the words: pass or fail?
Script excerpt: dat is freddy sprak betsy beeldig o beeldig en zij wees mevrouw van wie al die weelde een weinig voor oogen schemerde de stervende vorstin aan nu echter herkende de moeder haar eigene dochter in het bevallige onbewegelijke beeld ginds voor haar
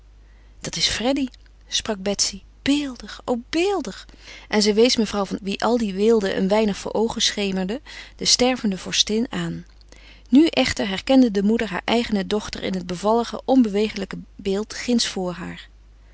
pass